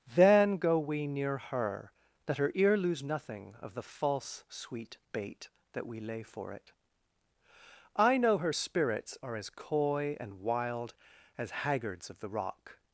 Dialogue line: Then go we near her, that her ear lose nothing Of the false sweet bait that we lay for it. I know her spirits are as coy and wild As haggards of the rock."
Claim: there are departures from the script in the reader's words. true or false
false